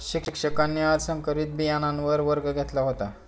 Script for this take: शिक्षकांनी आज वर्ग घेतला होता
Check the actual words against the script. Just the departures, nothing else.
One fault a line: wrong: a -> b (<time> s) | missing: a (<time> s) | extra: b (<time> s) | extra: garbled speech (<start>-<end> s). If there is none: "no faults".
extra: संकरित बियाणांवर (1.0 s)